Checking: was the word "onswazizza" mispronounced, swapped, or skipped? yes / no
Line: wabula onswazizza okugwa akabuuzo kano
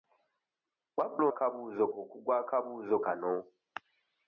yes